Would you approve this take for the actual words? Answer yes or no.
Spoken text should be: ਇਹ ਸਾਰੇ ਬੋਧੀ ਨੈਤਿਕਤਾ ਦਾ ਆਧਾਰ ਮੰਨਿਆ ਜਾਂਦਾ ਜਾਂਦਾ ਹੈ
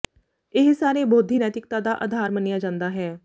no